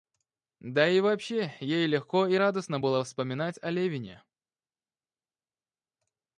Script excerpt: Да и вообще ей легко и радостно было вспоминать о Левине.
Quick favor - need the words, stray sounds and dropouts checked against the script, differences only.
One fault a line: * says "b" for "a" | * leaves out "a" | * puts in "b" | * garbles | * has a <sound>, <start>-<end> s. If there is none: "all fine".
all fine